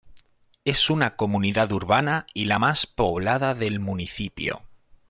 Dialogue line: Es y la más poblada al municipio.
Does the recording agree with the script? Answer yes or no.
no